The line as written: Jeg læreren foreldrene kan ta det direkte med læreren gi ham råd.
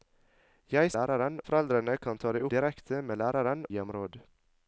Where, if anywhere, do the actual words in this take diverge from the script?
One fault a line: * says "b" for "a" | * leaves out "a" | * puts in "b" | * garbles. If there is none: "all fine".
all fine